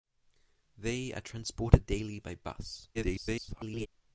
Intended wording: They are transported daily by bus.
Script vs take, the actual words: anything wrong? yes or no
yes